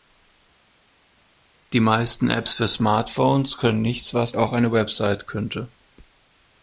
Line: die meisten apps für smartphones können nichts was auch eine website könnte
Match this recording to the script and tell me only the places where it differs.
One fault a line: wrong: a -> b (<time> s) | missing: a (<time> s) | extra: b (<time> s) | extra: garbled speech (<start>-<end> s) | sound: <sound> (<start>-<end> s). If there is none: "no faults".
no faults